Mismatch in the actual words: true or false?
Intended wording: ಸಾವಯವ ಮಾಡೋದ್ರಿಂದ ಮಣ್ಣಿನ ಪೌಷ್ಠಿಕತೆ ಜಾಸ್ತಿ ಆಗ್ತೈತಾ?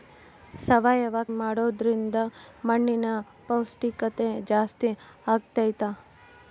false